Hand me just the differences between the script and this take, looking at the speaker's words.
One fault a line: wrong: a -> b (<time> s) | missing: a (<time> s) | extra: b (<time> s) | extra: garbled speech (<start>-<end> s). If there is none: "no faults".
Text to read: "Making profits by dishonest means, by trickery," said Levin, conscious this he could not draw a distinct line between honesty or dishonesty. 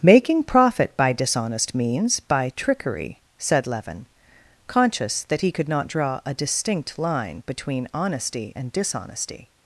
wrong: profits -> profit (0.4 s)
wrong: this -> that (5.2 s)
wrong: or -> and (8.5 s)